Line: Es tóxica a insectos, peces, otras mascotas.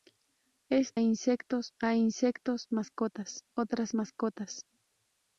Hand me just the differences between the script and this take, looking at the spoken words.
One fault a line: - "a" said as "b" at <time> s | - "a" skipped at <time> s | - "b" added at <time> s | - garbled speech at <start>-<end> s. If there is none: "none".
- "tóxica" said as "insectos" at 1.0 s
- "peces" said as "mascotas" at 2.7 s